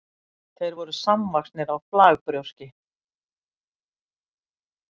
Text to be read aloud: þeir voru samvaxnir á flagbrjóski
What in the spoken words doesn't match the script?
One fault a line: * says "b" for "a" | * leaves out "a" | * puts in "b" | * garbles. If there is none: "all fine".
all fine